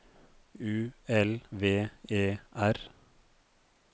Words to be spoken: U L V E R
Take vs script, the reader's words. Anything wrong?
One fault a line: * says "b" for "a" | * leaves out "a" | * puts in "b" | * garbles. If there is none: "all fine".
all fine